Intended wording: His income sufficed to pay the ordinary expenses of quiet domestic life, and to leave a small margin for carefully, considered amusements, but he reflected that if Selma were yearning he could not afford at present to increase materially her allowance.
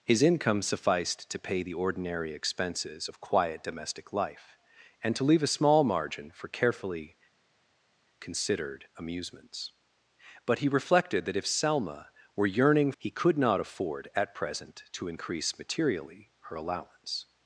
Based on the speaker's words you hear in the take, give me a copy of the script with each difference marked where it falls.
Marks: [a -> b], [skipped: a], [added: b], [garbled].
His income sufficed to pay the ordinary expenses of quiet domestic life, and to leave a small margin for carefully, considered amusements, but he reflected that if Selma were yearning he could not afford at present to increase materially her allowance.